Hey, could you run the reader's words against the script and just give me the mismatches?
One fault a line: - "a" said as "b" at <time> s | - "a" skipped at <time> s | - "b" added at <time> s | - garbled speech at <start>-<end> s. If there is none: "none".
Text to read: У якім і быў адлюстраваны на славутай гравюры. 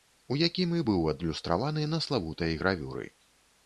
none